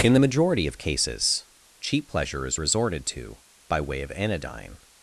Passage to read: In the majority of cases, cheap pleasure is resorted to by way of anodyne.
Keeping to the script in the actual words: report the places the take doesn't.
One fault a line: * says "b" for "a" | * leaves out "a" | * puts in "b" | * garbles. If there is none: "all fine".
all fine